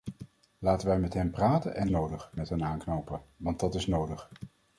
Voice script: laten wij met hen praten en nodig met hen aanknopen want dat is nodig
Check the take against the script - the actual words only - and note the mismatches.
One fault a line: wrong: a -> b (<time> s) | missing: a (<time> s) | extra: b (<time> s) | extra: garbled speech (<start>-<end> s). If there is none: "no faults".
no faults